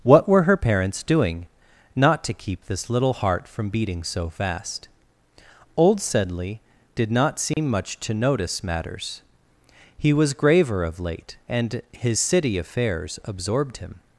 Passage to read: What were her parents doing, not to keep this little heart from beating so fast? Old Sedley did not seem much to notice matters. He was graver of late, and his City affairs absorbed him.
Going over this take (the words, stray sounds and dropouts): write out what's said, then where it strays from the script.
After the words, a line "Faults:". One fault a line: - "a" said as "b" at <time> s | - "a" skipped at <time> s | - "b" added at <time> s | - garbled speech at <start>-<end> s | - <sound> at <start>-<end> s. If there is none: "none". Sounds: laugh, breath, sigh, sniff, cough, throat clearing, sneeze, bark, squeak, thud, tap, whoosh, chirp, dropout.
What were her parents doing, not to keep this little heart from beating so fast? Old Sedley did not seem much to notice matters. He was graver of late, and his City affairs absorbed him.
Faults:
- dropout at 7.5-7.6 s